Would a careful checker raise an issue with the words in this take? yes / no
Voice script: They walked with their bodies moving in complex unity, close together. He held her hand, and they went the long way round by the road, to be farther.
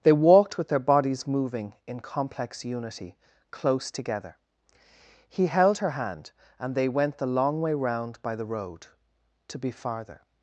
no